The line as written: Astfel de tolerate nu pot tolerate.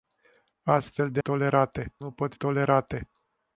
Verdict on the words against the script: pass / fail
pass